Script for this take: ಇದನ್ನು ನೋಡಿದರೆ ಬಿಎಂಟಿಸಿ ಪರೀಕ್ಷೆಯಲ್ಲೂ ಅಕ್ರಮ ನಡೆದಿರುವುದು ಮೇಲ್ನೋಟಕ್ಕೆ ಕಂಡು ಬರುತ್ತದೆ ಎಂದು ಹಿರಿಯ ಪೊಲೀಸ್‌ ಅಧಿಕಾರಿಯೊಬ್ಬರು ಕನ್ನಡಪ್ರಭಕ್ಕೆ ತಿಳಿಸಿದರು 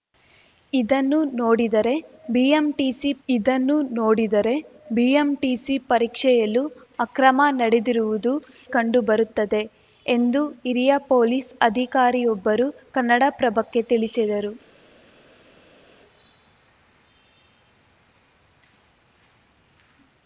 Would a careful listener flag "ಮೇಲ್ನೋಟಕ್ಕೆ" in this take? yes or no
yes